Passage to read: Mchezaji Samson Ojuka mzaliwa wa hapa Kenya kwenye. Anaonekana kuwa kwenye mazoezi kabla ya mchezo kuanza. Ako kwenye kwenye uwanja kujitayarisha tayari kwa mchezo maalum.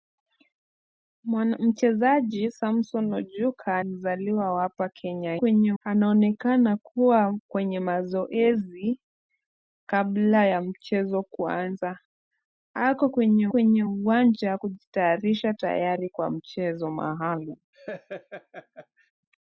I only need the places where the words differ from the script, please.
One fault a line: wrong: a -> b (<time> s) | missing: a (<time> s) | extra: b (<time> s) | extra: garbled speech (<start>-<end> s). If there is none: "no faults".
no faults